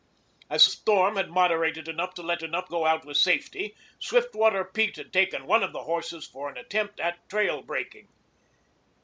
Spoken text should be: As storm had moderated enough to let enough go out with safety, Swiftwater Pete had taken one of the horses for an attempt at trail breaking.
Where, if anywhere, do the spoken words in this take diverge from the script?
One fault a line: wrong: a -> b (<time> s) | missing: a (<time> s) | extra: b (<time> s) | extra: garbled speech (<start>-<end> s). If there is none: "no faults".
no faults